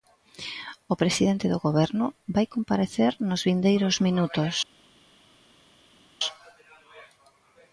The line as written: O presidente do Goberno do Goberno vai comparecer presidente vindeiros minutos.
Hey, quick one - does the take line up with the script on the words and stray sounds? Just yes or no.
no